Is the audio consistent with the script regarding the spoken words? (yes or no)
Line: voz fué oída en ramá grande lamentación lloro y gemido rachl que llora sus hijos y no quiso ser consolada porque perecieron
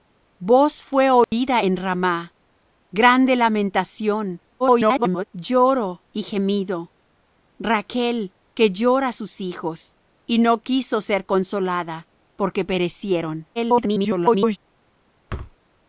no